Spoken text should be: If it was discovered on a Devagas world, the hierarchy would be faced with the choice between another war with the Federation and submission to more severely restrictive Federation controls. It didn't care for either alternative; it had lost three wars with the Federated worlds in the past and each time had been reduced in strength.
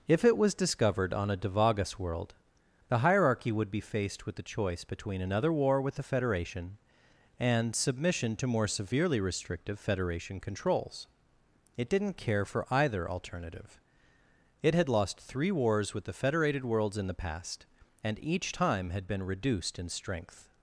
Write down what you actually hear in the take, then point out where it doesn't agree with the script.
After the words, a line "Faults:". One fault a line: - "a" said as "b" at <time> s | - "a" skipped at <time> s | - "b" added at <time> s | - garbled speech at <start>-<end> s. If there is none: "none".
If it was discovered on a Devagas world, the hierarchy would be faced with the choice between another war with the Federation and submission to more severely restrictive Federation controls. It didn't care for either alternative; it had lost three wars with the Federated worlds in the past and each time had been reduced in strength.
Faults:
none